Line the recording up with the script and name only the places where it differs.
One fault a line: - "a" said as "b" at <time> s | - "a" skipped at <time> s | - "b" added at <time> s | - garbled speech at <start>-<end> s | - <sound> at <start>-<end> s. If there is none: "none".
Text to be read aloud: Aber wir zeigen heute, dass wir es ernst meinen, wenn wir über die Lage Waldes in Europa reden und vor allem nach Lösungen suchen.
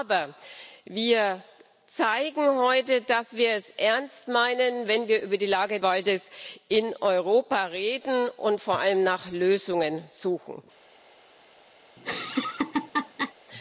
- laugh at 12.0-13.3 s